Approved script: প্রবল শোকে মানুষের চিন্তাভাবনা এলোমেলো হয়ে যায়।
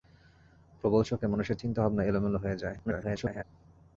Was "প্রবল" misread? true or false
false